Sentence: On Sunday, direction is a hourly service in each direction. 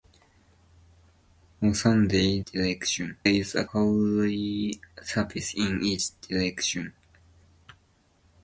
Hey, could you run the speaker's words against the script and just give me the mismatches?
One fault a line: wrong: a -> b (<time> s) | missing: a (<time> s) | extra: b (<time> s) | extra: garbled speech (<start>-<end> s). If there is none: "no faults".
no faults